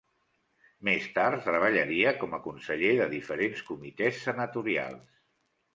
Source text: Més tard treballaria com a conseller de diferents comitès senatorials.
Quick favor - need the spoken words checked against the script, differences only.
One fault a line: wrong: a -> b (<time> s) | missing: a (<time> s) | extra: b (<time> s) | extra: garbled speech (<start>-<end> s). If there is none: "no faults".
no faults